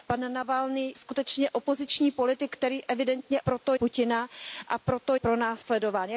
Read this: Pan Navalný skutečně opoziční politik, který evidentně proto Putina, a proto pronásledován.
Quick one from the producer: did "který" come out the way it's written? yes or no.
yes